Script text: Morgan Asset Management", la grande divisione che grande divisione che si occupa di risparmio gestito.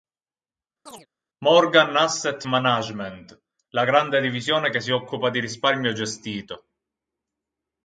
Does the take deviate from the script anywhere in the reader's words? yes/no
yes